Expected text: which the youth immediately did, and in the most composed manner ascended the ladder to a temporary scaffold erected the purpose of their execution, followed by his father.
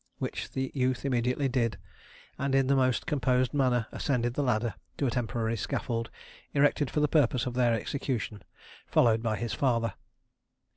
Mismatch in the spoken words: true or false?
true